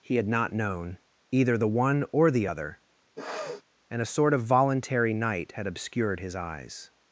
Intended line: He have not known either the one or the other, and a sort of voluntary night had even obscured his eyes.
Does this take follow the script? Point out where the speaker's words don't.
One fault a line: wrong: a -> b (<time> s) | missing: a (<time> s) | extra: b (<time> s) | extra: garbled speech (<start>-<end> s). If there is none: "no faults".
wrong: have -> had (0.1 s)
missing: even (5.7 s)